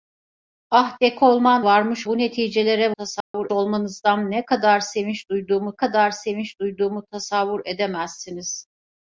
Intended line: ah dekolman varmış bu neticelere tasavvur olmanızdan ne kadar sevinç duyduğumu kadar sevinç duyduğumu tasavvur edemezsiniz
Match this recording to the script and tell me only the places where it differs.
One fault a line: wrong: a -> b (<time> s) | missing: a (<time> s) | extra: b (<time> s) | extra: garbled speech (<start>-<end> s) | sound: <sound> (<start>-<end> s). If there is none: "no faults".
sound: dropout (3.2-3.3 s)